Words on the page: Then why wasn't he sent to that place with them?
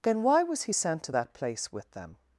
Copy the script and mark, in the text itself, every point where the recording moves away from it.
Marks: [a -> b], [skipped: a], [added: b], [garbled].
Then why [wasn't -> was] he sent to that place with them?